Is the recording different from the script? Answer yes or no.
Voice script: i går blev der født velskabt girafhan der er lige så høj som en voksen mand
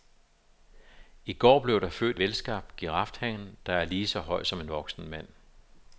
no